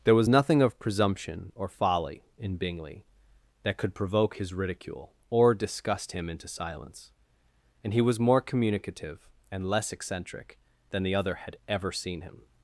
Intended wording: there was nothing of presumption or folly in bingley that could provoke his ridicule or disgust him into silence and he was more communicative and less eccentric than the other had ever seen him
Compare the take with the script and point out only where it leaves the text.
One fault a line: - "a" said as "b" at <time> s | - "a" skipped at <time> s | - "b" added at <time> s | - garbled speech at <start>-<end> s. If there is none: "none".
none